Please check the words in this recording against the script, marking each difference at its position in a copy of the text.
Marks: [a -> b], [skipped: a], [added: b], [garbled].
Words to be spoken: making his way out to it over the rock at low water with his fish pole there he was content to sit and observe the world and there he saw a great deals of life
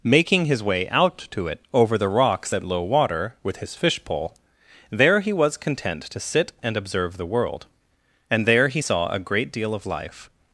making his way out to it over the [rock -> rocks] at low water with his fish pole there he was content to sit and observe the world and there he saw a great [deals -> deal] of life